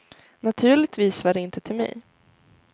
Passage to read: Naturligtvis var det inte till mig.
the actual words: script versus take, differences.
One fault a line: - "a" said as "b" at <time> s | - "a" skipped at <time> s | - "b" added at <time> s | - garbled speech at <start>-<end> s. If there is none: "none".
none